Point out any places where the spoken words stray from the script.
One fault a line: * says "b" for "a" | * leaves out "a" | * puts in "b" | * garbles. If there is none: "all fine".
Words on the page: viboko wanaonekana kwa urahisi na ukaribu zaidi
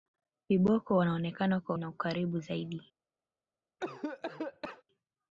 * leaves out "urahisi"